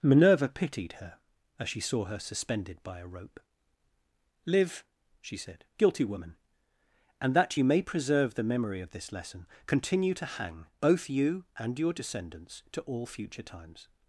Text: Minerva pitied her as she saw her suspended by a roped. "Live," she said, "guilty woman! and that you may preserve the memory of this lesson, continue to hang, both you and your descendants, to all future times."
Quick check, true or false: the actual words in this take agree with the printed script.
false